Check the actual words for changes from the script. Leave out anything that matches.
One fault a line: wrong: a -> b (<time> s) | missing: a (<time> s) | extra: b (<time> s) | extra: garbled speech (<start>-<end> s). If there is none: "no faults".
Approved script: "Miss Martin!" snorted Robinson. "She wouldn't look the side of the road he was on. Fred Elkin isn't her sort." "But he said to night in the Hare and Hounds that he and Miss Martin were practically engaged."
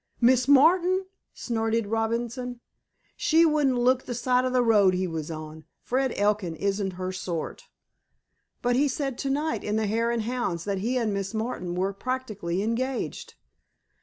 no faults